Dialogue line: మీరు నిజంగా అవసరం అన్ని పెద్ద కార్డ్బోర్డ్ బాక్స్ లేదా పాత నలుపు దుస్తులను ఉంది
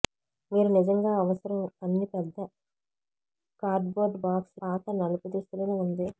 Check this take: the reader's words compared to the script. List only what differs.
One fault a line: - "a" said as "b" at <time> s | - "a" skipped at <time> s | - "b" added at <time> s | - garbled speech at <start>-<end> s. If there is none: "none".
- "లేదా" skipped at 4.6 s